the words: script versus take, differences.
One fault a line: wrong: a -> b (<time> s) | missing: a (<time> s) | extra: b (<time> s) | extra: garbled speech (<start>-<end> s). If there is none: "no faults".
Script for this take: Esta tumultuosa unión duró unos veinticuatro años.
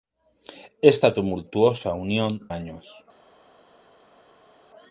missing: duró unos veinticuatro (2.5 s)